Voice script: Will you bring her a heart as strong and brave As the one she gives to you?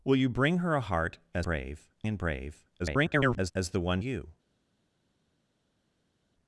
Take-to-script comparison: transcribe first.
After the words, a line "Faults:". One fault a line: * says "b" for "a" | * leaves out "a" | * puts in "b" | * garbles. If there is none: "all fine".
Will you bring her a heart as brave and brave [garbled] As the one you?
Faults:
* says "brave" for "strong"
* garbles
* leaves out "she gives to"